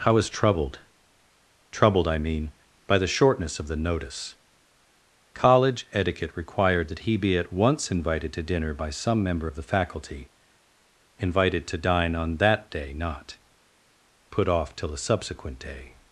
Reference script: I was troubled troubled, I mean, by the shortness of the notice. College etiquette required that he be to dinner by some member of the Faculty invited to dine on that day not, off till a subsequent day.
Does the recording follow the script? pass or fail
fail